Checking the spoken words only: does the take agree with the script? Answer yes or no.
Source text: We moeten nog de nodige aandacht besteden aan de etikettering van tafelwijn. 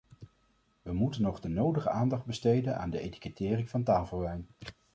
yes